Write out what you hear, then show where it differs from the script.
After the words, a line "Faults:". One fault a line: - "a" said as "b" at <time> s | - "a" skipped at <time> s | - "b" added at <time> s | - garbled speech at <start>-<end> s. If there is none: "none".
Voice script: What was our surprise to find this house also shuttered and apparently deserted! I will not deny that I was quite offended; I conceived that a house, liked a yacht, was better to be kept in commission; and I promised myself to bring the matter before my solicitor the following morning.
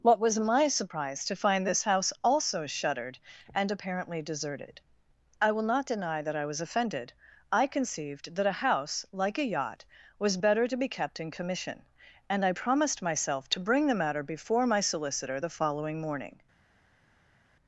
What was my surprise to find this house also shuttered and apparently deserted! I will not deny that I was offended; I conceived that a house, like a yacht, was better to be kept in commission; and I promised myself to bring the matter before my solicitor the following morning.
Faults:
- "our" said as "my" at 0.4 s
- "quite" skipped at 6.6 s
- "liked" said as "like" at 9.1 s